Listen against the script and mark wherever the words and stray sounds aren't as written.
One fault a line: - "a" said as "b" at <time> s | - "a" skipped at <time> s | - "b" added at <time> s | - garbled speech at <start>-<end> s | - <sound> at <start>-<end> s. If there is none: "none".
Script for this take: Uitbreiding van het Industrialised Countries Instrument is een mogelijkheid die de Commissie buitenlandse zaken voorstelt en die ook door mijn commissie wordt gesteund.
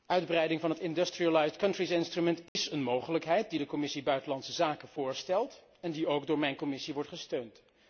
- dropout at 2.5-2.6 s